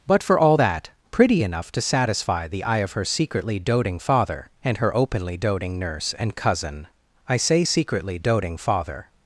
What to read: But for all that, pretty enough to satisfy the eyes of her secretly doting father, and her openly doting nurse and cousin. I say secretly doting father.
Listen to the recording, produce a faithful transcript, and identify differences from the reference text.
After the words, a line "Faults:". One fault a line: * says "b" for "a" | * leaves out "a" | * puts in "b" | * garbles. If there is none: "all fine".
But for all that, pretty enough to satisfy the eye of her secretly doting father, and her openly doting nurse and cousin. I say secretly doting father.
Faults:
* says "eye" for "eyes"